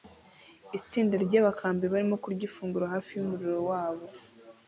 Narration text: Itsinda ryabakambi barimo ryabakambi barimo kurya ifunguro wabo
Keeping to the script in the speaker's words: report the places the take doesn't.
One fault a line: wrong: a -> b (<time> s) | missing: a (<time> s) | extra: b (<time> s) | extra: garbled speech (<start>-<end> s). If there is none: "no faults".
wrong: ryabakambi barimo kurya ifunguro -> kurya ifunguro hafi yumuriro (2.2 s)